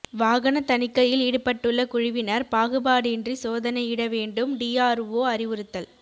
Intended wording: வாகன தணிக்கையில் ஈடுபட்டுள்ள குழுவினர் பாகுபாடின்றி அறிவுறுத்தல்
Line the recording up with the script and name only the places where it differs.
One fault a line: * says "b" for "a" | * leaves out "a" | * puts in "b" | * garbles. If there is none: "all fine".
* puts in "சோதனையிட வேண்டும் டிஆர்ஓ"